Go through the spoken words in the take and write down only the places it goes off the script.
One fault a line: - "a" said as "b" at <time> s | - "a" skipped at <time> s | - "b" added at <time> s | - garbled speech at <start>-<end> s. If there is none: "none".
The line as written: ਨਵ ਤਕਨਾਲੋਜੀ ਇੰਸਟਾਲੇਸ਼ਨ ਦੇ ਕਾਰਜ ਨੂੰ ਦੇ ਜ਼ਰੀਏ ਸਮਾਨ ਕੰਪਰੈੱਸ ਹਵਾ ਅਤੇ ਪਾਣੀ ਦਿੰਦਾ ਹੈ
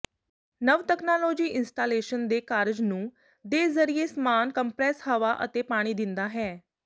none